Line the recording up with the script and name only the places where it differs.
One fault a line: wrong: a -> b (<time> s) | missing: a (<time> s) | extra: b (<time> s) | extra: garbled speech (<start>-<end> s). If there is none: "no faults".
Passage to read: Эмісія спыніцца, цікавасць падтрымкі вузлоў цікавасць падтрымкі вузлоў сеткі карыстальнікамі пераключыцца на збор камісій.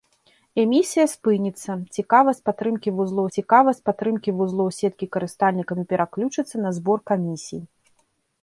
no faults